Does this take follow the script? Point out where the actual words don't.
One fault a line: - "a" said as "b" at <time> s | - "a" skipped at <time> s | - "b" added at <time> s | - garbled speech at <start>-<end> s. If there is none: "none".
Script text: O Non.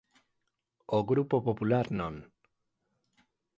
- "Grupo Popular" added at 1.1 s